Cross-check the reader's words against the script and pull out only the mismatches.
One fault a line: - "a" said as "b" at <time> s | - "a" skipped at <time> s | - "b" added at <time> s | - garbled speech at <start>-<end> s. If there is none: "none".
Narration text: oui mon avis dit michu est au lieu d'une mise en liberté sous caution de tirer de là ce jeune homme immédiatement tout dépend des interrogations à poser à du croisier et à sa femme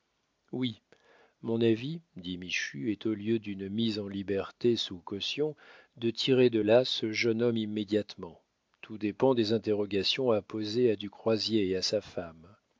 none